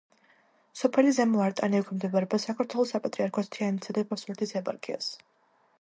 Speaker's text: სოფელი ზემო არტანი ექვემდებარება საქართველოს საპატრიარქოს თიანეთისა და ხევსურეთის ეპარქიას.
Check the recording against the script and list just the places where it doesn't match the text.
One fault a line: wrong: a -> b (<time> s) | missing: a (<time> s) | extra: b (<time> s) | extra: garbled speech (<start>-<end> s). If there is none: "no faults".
no faults